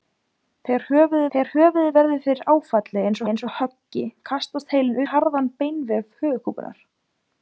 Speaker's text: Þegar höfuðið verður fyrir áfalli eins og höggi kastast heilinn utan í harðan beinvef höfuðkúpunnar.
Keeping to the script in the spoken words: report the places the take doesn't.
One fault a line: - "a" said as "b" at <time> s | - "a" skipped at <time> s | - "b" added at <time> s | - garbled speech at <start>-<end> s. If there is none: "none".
- "þegar höfuðið" added at 1.3 s
- "eins" added at 3.3 s
- "utan" skipped at 5.0 s